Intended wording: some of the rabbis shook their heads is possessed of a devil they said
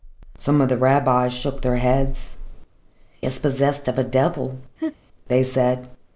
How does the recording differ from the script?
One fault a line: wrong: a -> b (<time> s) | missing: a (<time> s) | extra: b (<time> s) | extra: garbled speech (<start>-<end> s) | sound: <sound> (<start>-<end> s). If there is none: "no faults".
sound: laugh (4.8-5.0 s)